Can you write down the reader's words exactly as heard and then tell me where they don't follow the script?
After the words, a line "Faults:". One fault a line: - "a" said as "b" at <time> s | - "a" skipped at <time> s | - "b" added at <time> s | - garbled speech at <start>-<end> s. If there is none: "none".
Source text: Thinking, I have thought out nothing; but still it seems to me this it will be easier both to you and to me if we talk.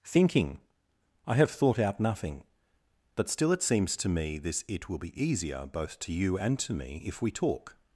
Thinking, I have thought out nothing; but still it seems to me this it will be easier both to you and to me if we talk.
Faults:
none